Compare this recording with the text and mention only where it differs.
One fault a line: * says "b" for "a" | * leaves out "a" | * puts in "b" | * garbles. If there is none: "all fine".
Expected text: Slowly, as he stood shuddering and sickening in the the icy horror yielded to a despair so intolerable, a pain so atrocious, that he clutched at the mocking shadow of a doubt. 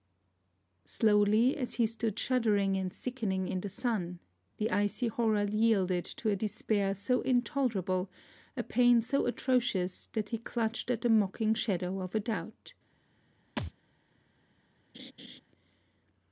* puts in "sun"